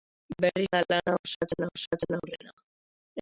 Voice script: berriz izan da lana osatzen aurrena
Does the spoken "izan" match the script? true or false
false